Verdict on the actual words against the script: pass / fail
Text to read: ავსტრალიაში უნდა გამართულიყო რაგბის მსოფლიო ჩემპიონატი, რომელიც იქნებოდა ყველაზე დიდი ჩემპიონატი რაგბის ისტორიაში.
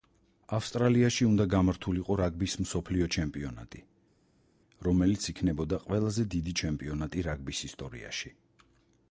pass